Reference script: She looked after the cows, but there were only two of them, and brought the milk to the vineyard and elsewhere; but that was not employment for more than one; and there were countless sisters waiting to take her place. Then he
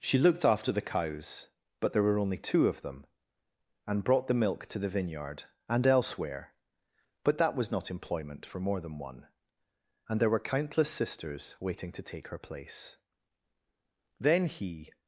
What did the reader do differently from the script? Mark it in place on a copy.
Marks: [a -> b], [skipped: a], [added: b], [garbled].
She looked after the cows, but there were only two of them, and brought the milk to the vineyard and elsewhere; but that was not employment for more than one; and there were countless sisters waiting to take her place. Then he